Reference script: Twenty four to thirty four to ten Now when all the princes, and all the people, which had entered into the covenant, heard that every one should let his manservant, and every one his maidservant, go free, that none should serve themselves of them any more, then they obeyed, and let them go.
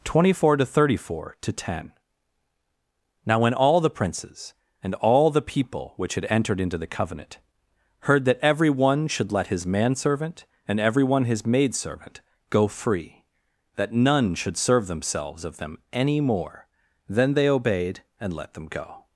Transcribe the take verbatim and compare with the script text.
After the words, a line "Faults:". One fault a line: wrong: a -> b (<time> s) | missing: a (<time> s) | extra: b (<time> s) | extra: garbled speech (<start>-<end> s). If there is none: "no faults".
Twenty four to thirty four to ten Now when all the princes, and all the people, which had entered into the covenant, heard that every one should let his manservant, and every one his maidservant, go free, that none should serve themselves of them any more, then they obeyed, and let them go.
Faults:
no faults